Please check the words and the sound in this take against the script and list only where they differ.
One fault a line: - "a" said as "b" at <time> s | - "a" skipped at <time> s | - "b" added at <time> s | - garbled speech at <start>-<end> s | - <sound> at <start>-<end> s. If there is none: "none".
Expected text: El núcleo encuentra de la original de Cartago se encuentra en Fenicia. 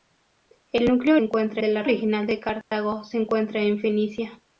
- dropout at 2.6-2.7 s